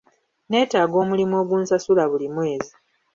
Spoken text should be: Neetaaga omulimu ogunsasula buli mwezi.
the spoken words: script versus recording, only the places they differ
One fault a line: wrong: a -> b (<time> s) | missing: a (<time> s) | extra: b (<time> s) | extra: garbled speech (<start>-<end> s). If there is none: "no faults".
no faults